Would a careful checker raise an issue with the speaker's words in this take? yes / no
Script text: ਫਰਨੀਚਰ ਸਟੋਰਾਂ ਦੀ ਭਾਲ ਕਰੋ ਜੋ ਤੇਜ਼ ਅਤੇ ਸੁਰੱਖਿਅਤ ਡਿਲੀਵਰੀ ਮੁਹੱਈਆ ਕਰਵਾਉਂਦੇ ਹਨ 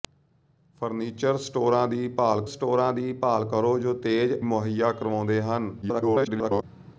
yes